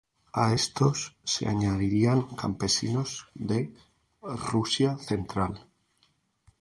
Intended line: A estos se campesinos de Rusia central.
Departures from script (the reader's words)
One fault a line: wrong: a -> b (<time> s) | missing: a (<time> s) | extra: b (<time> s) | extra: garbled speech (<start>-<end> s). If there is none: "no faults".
extra: añadirían (1.5 s)